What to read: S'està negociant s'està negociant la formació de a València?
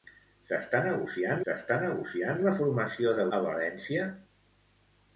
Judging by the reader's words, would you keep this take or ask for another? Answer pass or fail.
pass